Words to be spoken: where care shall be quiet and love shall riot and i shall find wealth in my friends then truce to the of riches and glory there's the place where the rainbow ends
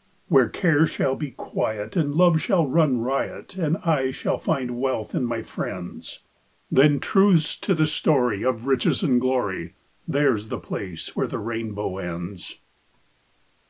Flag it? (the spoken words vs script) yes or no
yes